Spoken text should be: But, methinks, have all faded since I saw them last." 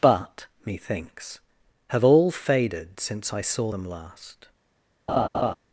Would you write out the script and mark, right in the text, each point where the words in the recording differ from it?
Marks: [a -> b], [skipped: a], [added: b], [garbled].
But, methinks, have all faded since I saw them last."